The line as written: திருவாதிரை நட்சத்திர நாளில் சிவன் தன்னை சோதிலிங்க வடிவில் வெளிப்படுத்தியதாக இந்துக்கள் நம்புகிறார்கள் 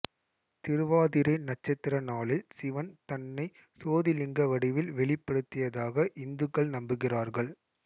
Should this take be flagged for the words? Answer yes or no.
no